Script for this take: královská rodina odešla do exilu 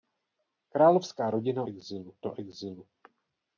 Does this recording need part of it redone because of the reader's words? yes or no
yes